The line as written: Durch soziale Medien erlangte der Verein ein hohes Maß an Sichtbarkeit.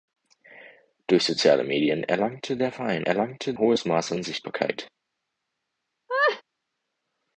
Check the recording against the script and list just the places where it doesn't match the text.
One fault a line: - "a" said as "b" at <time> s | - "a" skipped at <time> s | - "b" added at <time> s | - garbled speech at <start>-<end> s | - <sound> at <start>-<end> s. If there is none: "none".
- "ein" said as "erlangte" at 3.0 s
- laugh at 6.1-6.4 s